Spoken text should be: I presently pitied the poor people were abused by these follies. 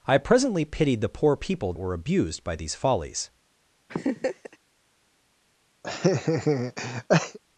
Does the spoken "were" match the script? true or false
true